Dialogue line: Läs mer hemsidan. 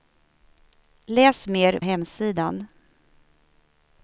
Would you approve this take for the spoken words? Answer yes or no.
yes